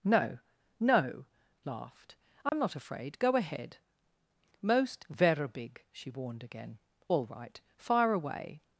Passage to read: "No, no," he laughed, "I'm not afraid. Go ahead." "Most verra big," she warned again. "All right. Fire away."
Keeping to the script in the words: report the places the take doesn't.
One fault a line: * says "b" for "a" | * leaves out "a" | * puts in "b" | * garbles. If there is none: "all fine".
* leaves out "he"